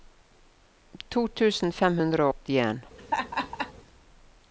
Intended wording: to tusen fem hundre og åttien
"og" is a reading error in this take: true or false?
true